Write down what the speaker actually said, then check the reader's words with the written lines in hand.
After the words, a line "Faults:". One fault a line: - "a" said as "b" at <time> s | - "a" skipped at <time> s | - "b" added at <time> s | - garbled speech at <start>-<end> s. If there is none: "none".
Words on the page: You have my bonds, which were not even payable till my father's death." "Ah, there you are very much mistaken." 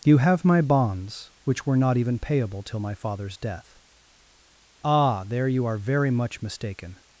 You have my bonds, which were not even payable till my father's death." "Ah, there you are very much mistaken."
Faults:
none